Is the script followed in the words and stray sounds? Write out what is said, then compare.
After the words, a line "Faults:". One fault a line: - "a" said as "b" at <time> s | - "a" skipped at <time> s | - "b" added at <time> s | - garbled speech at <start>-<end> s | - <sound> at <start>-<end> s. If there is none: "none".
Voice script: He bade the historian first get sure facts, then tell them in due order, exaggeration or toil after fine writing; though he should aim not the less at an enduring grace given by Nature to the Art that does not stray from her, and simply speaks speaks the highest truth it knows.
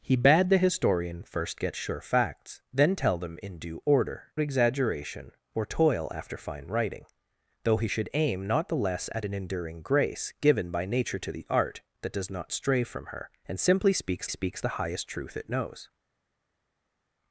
He bade the historian first get sure facts, then tell them in due order, exaggeration or toil after fine writing; though he should aim not the less at an enduring grace given by Nature to the Art that does not stray from her, and simply speaks speaks the highest truth it knows.
Faults:
none